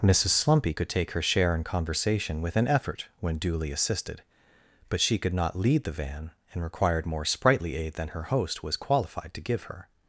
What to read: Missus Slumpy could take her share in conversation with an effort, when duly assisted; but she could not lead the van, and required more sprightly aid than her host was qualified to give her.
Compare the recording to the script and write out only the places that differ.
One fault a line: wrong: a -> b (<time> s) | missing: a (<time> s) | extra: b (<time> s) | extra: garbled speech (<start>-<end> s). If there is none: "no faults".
no faults